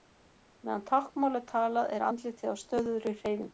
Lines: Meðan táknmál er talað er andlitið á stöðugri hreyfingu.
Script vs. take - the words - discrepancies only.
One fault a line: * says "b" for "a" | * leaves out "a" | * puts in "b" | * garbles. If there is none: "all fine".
all fine